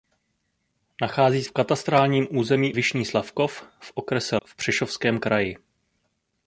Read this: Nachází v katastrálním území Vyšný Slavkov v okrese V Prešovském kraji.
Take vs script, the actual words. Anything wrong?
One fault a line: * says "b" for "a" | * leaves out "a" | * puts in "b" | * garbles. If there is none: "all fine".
all fine